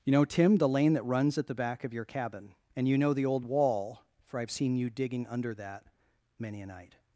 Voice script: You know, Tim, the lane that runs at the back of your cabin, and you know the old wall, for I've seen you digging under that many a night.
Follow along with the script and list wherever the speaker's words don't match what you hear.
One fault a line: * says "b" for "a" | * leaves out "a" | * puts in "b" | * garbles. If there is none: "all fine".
all fine